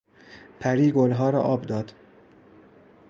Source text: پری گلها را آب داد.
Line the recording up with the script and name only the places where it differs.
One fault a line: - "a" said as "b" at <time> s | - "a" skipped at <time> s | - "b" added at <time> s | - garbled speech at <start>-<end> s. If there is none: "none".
none